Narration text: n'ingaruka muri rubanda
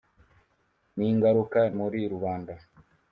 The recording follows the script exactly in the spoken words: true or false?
true